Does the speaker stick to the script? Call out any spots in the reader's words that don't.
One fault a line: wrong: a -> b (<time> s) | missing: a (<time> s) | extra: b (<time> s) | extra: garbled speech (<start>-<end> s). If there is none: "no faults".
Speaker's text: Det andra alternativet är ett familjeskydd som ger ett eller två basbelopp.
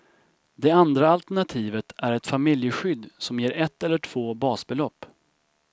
no faults